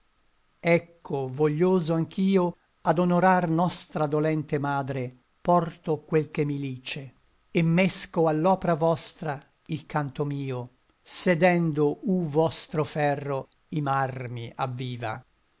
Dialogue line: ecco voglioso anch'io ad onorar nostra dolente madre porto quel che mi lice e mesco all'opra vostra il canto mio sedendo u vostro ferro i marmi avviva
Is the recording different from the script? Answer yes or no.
no